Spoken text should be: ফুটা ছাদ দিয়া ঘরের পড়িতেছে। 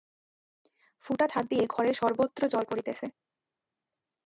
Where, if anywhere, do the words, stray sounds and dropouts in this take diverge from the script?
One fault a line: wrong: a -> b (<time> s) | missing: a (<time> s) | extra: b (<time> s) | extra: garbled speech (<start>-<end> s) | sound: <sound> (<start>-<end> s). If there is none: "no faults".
extra: সর্বত্র জল (1.9 s)